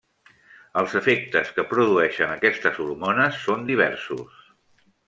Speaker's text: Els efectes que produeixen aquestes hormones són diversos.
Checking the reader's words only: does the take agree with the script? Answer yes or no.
yes